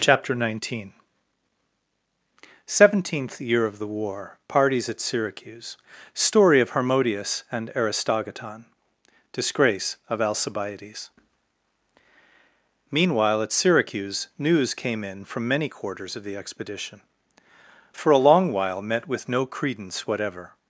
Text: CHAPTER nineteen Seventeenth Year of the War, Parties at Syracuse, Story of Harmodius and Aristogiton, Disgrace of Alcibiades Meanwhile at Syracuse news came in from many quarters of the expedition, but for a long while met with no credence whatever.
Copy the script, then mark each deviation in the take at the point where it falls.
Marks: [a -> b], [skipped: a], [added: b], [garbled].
CHAPTER nineteen Seventeenth Year of the War, Parties at Syracuse, Story of Harmodius and Aristogiton, Disgrace of Alcibiades Meanwhile at Syracuse news came in from many quarters of the expedition, [skipped: but] for a long while met with no credence whatever.